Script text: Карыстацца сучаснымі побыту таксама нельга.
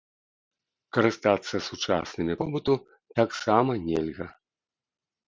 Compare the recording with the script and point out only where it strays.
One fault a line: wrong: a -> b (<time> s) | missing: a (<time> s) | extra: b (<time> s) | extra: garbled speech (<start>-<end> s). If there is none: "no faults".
no faults